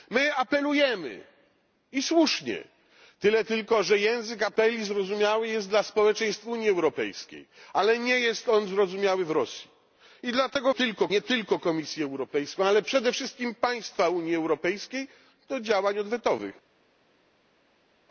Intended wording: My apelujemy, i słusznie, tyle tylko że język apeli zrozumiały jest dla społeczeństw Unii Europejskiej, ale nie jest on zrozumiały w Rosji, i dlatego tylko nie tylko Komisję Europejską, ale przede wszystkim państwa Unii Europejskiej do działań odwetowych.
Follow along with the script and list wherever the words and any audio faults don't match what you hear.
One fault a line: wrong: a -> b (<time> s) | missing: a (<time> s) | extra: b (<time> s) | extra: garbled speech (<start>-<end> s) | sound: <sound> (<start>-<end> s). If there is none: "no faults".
no faults